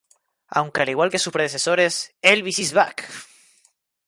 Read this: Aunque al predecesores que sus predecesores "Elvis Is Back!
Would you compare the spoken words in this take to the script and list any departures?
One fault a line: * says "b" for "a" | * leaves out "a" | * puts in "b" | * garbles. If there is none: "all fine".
* says "igual" for "predecesores"